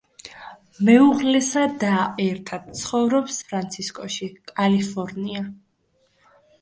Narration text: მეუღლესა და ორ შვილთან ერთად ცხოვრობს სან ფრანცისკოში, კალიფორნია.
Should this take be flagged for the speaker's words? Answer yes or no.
yes